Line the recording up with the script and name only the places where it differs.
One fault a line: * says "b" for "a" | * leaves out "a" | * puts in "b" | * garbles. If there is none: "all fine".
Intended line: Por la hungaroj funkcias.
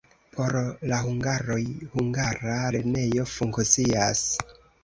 * puts in "hungara lernejo"